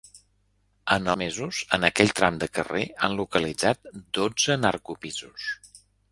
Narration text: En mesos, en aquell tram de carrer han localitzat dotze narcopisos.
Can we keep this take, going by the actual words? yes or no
yes